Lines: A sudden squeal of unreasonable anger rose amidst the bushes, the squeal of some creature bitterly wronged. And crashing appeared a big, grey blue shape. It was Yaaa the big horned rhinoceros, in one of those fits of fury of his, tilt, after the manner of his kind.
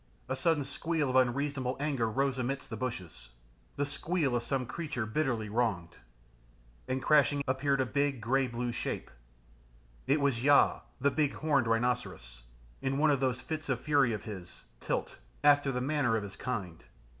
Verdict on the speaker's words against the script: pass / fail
pass